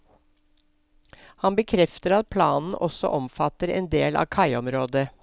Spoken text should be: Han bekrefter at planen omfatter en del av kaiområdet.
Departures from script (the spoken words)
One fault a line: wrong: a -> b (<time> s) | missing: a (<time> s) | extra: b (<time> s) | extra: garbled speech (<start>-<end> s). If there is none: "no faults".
extra: også (2.8 s)